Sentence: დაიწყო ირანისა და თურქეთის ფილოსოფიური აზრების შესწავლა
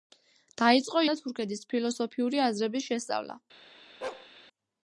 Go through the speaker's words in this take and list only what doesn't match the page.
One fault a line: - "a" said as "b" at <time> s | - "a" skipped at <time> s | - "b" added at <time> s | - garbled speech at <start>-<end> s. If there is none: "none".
- "ირანისა" skipped at 1.0 s